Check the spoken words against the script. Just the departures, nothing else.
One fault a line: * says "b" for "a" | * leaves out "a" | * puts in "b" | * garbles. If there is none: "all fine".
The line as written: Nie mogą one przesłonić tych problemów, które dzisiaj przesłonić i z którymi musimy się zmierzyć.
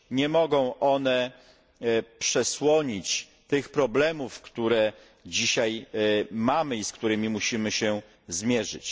* says "mamy" for "przesłonić"